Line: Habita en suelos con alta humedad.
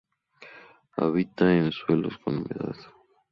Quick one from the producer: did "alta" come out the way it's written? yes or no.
no